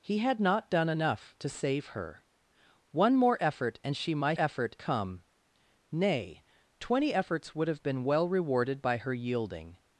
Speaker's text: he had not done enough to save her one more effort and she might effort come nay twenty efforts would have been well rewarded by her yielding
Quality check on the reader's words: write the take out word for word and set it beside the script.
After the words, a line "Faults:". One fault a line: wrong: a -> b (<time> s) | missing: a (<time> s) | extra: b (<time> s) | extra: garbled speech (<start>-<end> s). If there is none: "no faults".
he had not done enough to save her one more effort and she might effort come nay twenty efforts would have been well rewarded by her yielding
Faults:
no faults